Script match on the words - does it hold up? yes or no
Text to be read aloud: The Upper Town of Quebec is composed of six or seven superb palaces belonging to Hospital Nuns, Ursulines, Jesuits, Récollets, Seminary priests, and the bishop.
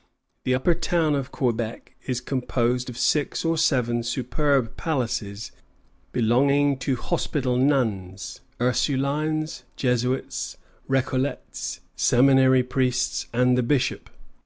yes